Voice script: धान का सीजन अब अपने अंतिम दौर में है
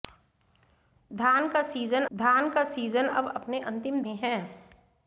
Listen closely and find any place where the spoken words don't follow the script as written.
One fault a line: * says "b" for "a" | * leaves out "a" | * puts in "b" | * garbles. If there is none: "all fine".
* puts in "धान का सीजन"
* leaves out "दौर"